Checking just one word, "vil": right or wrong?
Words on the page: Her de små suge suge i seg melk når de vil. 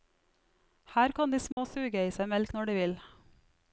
right